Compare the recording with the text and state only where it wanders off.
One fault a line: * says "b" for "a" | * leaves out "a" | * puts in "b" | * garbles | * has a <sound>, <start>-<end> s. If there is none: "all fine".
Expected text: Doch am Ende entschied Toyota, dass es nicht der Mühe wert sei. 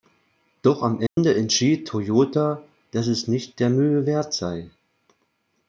* has a dropout, 1.1-1.2 s